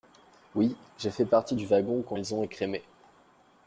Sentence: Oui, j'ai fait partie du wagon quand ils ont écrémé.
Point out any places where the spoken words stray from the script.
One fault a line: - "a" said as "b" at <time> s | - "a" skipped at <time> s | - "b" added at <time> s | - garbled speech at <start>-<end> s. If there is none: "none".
none